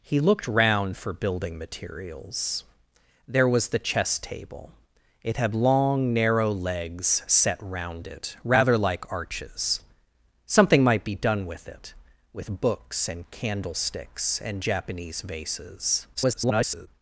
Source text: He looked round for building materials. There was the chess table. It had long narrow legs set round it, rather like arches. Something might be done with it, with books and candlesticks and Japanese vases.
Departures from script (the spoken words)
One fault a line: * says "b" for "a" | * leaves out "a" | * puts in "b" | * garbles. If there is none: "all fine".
* garbles